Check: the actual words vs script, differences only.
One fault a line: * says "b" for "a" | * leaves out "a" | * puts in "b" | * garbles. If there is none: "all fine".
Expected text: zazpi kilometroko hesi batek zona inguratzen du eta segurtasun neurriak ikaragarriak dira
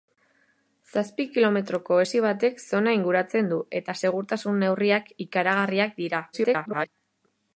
* garbles